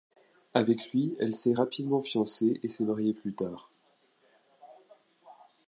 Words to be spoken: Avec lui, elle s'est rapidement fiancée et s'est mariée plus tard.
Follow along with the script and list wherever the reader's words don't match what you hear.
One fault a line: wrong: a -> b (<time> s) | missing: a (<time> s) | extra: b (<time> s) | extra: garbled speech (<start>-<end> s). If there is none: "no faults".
no faults